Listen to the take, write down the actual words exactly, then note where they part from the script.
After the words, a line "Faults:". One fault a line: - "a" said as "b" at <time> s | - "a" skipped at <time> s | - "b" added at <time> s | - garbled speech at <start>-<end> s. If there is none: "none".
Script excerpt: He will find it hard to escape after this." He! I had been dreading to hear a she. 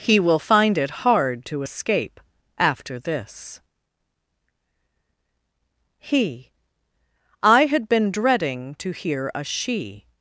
He will find it hard to escape after this." He! I had been dreading to hear a she.
Faults:
none